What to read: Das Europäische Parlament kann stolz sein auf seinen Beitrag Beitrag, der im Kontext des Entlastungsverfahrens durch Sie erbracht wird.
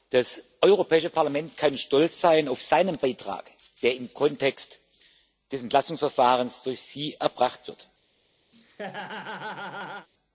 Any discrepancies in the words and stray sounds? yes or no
yes